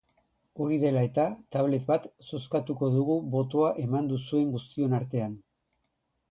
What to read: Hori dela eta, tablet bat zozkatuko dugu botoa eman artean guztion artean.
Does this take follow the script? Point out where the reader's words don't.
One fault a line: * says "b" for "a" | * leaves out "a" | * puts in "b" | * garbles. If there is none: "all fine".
* says "duzuen" for "artean"